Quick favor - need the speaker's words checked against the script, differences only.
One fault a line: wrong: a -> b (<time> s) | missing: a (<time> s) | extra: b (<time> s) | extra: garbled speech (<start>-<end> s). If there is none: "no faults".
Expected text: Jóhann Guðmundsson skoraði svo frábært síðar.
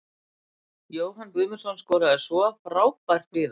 no faults